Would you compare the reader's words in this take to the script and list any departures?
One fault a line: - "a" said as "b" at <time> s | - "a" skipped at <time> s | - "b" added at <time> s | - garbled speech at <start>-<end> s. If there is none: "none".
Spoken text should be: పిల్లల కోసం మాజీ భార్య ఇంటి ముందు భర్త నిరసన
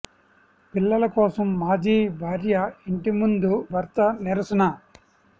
none